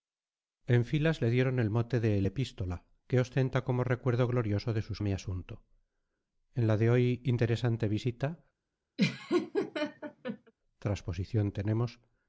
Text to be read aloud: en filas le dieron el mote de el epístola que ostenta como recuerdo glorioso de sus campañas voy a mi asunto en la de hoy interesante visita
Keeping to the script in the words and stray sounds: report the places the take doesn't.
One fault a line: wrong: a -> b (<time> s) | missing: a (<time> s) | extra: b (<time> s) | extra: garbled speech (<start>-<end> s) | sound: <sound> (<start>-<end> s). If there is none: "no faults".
missing: campañas voy (5.0 s)
sound: laugh (9.0-10.5 s)